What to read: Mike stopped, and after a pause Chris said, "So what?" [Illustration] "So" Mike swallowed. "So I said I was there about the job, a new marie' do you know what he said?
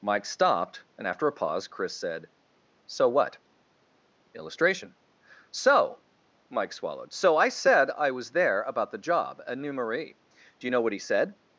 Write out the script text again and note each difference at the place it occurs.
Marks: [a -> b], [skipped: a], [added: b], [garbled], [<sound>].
Mike stopped, and after a pause Chris said, "So what?" [Illustration] "So" Mike swallowed. "So I said I was there about the job, a new marie' do you know what he said?